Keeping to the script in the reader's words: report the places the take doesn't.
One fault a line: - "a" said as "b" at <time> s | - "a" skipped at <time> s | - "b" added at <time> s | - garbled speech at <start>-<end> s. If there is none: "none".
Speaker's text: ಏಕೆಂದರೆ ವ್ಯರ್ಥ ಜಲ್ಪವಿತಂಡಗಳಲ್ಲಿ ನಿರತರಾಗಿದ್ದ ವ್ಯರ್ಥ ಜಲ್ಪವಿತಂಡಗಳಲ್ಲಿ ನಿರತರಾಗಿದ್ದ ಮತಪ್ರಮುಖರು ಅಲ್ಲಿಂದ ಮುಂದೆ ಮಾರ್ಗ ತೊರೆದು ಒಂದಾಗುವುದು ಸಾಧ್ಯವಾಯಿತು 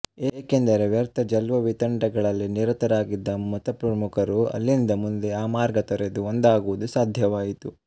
- "ವ್ಯರ್ಥ ಜಲ್ಪವಿತಂಡಗಳಲ್ಲಿ ನಿರತರಾಗಿದ್ದ" skipped at 3.4 s
- "ಆ" added at 5.3 s